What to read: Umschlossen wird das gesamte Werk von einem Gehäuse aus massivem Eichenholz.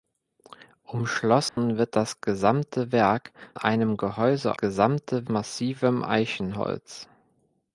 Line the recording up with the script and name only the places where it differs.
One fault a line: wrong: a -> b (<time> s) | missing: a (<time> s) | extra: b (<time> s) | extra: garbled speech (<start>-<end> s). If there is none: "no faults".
missing: von (3.3 s)
wrong: aus -> gesamte (4.6 s)